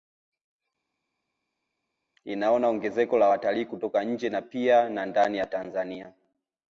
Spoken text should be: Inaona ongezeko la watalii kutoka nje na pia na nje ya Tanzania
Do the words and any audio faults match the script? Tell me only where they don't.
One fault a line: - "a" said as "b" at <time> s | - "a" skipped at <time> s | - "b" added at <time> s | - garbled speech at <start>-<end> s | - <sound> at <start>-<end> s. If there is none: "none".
- "nje" said as "ndani" at 5.1 s